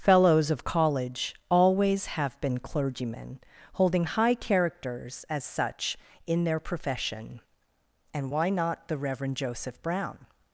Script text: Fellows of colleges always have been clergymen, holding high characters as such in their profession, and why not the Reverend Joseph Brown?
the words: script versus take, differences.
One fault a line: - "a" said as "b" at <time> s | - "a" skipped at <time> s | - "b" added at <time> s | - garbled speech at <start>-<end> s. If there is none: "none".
- "colleges" said as "college" at 0.6 s